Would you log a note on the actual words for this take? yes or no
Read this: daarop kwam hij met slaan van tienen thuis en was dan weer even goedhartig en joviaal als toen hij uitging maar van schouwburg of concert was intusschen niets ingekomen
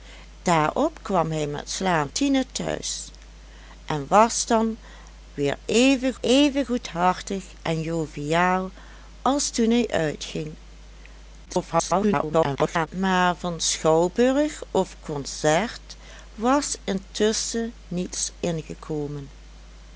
yes